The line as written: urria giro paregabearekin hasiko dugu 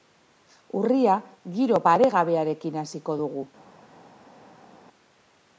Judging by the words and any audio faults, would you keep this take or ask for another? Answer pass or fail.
pass